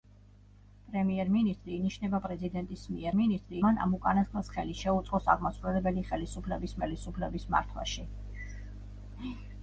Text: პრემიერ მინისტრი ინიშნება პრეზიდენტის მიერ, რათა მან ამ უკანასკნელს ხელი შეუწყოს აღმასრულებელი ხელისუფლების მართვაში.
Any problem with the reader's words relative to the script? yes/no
yes